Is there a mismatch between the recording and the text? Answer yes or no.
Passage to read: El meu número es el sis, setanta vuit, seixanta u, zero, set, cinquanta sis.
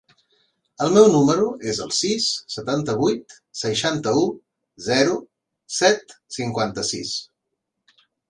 no